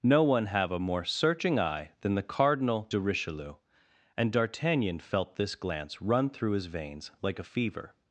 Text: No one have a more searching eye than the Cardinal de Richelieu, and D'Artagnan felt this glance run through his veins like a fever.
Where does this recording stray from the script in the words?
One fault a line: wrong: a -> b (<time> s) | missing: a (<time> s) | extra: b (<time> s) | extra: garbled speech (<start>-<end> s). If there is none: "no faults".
no faults